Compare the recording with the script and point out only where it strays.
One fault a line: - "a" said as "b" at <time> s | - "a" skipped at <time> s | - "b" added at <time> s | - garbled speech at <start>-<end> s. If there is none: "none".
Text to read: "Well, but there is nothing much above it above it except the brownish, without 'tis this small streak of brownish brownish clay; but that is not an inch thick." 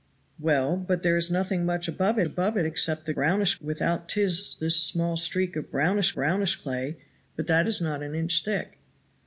none